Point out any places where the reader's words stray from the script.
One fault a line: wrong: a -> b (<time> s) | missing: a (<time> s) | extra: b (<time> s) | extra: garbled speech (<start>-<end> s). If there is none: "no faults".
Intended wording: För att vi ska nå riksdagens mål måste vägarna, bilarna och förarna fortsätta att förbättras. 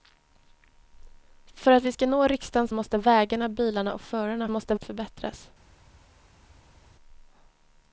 missing: mål (2.7 s)
wrong: fortsätta -> måste (4.5 s)